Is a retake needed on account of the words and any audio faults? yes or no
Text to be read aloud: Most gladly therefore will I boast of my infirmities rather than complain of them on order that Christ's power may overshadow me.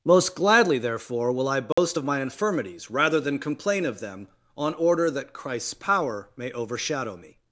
yes